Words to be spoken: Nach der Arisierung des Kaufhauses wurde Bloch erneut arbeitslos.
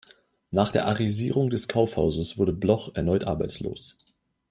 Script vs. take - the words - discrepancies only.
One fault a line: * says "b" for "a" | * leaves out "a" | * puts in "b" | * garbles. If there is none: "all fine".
all fine